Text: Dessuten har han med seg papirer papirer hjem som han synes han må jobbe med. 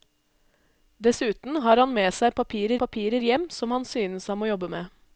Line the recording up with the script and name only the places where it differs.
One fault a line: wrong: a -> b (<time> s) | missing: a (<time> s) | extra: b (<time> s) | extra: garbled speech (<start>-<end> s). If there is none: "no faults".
no faults